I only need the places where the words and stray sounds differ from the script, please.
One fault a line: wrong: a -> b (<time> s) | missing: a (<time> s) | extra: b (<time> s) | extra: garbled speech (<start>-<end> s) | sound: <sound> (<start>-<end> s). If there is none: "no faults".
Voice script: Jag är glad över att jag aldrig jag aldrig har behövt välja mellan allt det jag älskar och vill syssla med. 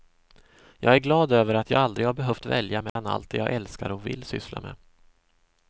missing: jag aldrig (2.1 s)
sound: dropout (2.9-3.0 s)